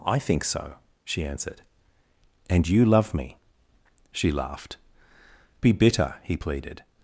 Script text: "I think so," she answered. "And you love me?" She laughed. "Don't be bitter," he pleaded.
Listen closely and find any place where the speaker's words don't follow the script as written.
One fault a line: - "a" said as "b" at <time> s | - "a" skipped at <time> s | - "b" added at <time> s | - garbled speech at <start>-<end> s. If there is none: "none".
- "Don't" skipped at 4.8 s